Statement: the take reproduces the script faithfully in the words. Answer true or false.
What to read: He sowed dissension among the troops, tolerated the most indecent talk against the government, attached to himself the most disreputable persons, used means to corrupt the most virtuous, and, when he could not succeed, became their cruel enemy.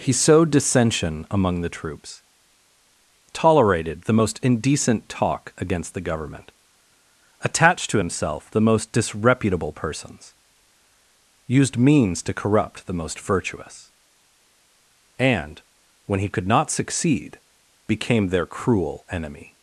true